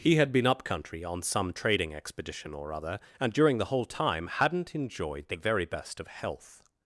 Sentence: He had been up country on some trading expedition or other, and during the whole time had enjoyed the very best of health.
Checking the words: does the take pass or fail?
fail